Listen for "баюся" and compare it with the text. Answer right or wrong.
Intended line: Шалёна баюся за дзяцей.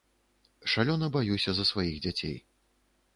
right